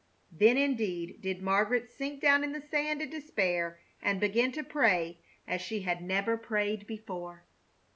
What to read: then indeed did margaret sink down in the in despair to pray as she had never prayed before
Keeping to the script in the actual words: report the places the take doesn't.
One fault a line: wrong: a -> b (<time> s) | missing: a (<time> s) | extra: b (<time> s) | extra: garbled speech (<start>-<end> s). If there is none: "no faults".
extra: sand (2.6 s)
extra: and begin (4.0 s)